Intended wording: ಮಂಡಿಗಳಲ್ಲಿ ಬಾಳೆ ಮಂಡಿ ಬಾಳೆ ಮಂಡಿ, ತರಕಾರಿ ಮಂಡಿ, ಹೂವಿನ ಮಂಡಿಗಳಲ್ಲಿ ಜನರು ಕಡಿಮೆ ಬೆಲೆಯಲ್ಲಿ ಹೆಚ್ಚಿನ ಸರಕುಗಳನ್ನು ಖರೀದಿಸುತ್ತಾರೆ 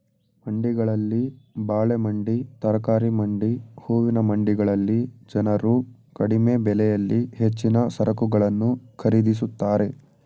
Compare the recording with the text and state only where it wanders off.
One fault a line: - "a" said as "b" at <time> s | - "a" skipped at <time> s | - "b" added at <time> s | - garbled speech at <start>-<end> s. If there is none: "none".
- "ಬಾಳೆ ಮಂಡಿ" skipped at 2.4 s